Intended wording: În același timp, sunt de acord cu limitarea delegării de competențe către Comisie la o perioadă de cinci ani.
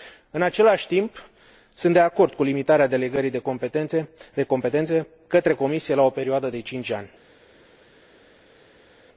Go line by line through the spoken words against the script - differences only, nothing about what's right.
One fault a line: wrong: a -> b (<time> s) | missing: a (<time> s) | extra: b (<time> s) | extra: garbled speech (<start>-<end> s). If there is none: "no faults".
no faults